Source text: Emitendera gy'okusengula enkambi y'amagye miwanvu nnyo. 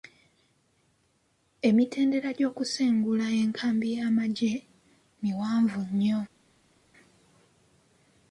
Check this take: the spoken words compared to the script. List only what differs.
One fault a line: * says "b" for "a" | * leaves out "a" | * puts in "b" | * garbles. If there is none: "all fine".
all fine